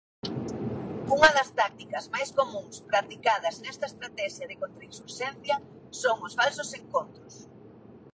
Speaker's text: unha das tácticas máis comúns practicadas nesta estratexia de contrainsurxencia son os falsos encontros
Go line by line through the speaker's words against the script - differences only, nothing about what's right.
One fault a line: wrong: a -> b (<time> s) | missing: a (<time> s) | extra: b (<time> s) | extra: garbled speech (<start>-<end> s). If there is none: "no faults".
no faults